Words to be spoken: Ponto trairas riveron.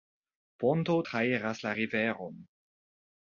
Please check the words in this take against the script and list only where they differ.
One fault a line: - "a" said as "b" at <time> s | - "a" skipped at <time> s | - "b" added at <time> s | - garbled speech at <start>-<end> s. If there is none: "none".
- "la" added at 1.6 s